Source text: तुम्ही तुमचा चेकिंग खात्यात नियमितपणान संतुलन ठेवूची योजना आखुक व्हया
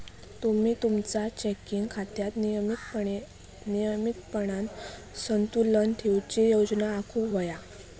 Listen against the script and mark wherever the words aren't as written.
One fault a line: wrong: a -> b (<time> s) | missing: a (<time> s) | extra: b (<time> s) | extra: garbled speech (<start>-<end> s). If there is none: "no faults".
no faults